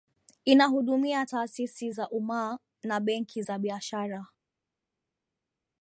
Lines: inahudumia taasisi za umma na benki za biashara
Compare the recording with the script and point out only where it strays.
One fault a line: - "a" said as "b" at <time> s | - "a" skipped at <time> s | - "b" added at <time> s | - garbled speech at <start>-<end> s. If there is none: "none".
none